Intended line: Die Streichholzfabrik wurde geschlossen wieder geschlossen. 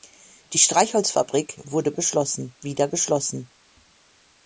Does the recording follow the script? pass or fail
pass